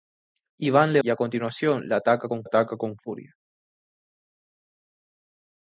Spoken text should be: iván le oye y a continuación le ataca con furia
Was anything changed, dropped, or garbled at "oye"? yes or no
yes